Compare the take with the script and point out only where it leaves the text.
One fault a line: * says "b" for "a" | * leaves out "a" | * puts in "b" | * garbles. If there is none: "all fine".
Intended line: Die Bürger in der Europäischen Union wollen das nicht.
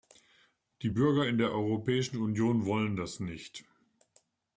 all fine